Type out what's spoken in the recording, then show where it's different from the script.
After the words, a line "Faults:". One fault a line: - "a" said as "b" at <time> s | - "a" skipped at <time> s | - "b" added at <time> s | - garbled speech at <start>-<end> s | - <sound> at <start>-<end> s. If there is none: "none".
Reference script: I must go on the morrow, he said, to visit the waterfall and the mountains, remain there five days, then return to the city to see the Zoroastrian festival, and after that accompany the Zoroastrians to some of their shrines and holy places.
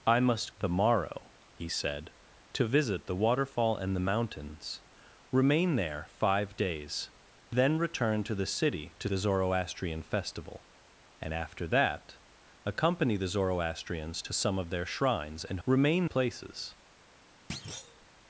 I must the morrow, he said, to visit the waterfall and the mountains, remain there five days, then return to the city to the Zoroastrian festival, and after that accompany the Zoroastrians to some of their shrines and remain places.
Faults:
- "go on" skipped at 0.5 s
- "see" skipped at 9.1 s
- "holy" said as "remain" at 15.7 s
- thud at 17.5-18.1 s